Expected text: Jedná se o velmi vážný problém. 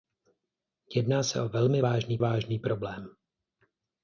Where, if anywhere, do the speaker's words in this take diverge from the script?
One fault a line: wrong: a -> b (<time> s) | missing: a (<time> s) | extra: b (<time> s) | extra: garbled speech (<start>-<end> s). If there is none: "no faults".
extra: vážný (2.2 s)